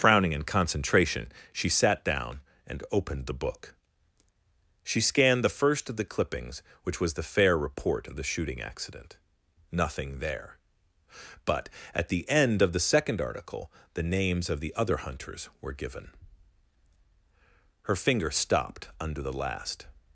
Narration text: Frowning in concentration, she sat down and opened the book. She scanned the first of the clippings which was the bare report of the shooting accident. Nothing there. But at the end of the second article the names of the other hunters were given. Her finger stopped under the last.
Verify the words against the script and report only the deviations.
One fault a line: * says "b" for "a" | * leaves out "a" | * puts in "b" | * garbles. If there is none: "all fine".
* says "fair" for "bare"